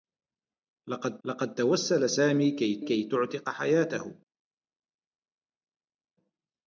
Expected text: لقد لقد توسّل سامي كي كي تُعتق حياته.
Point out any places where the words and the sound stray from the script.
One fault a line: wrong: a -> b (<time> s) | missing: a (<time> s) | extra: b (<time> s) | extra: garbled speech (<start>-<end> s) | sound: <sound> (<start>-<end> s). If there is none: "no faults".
no faults